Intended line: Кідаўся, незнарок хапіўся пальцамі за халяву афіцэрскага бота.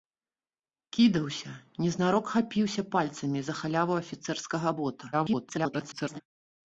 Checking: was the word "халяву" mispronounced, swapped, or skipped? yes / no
no